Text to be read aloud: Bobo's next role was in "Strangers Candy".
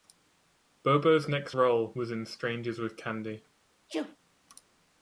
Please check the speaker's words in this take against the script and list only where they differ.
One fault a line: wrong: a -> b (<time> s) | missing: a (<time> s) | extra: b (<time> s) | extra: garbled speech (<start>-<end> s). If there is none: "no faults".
extra: with (2.8 s)